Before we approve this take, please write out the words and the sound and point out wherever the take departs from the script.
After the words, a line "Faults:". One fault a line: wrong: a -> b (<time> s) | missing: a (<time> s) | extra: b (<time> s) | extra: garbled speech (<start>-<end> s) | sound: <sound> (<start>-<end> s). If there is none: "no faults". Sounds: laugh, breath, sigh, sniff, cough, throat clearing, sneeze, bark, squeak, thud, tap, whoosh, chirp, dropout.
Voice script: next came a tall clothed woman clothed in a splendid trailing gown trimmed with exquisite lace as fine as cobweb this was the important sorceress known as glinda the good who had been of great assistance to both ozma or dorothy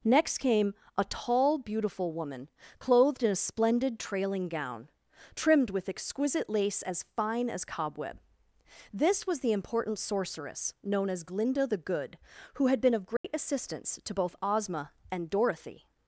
next came a tall beautiful woman clothed in a splendid trailing gown trimmed with exquisite lace as fine as cobweb this was the important sorceress known as glinda the good who had been of great assistance to both ozma and dorothy
Faults:
wrong: clothed -> beautiful (1.6 s)
sound: dropout (13.2-13.2 s)
wrong: or -> and (15.1 s)